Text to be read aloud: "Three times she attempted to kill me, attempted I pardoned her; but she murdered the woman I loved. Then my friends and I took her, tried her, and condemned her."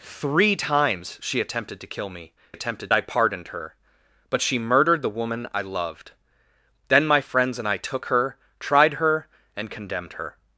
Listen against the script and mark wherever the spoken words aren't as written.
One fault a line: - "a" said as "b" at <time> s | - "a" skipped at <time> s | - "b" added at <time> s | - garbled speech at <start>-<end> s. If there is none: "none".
none